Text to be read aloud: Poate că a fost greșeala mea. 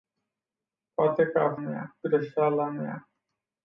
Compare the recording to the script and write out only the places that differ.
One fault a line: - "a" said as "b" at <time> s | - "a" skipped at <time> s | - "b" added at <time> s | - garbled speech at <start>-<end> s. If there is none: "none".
- "fost" said as "mea" at 1.6 s